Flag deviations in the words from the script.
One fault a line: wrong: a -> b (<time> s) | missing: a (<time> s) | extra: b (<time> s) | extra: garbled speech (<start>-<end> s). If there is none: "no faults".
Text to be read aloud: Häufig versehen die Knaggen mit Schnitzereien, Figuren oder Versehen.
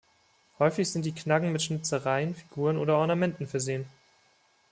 wrong: versehen -> sind (0.9 s)
extra: Ornamenten (3.0 s)